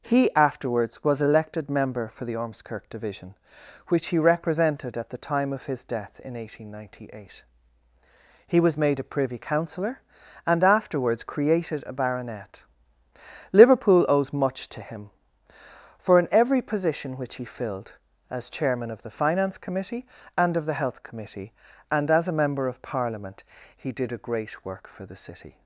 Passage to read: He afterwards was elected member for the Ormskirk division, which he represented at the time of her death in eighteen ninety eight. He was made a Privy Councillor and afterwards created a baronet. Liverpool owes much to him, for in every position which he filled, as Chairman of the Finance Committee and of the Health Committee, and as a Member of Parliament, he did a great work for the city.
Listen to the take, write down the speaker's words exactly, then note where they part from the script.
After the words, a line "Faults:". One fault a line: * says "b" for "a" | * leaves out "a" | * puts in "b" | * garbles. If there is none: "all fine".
He afterwards was elected member for the Ormskirk division, which he represented at the time of his death in eighteen ninety eight. He was made a Privy Councillor and afterwards created a baronet. Liverpool owes much to him, for in every position which he filled, as Chairman of the Finance Committee and of the Health Committee, and as a Member of Parliament, he did a great work for the city.
Faults:
* says "his" for "her"